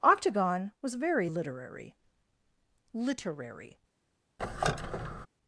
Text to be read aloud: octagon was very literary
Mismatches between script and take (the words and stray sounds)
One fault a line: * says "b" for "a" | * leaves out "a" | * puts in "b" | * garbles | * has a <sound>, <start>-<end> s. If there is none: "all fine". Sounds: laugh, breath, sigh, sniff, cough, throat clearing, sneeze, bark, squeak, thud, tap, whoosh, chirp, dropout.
* puts in "literary"
* has a squeak, 4.4-5.3 s